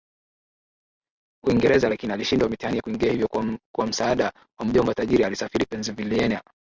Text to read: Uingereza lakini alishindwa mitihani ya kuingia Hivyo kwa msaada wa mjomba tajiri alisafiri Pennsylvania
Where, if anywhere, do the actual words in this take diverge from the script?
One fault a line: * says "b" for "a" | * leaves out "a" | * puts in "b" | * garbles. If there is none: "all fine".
all fine